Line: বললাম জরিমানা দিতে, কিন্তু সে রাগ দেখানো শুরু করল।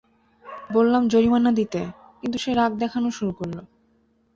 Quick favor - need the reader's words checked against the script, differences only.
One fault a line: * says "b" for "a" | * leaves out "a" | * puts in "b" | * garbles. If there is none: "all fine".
all fine